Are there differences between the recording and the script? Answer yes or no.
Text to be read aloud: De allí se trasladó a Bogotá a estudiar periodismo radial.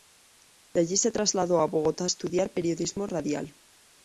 no